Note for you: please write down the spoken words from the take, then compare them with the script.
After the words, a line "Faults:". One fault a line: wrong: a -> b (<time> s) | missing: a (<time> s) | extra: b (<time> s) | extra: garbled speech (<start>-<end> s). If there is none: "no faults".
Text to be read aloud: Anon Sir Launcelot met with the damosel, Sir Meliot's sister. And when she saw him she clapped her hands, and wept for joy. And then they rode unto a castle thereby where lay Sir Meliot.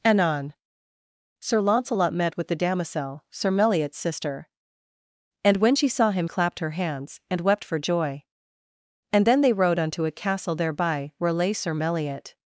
Anon Sir Launcelot met with the damosel, Sir Meliot's sister. And when she saw him clapped her hands, and wept for joy. And then they rode unto a castle thereby where lay Sir Meliot.
Faults:
missing: she (6.3 s)